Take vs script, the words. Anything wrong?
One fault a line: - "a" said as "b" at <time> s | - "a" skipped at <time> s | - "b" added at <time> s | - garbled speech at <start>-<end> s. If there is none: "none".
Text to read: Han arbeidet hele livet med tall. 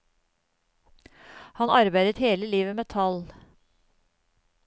none